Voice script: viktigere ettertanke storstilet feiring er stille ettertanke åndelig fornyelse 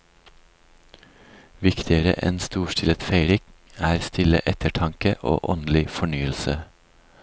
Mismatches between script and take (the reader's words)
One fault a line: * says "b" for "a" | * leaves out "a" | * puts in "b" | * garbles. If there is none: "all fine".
* says "enn" for "ettertanke"
* puts in "og"